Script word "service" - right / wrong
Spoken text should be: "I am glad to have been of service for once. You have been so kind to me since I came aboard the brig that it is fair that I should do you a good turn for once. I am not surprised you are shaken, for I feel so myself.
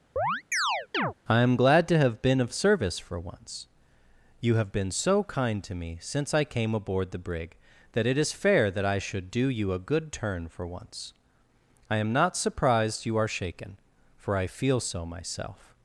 right